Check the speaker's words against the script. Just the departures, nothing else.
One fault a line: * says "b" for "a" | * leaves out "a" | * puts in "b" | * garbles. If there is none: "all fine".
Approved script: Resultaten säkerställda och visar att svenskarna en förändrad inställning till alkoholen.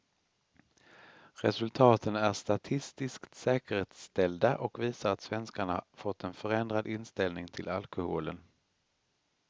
* puts in "är statistiskt"
* puts in "fått"